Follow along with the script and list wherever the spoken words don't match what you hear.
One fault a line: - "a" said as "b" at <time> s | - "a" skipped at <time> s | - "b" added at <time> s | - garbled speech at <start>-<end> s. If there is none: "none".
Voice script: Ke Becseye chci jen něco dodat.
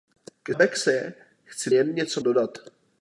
none